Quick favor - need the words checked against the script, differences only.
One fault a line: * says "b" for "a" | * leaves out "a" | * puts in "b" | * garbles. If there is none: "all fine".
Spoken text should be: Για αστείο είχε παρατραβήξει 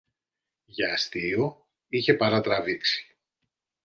all fine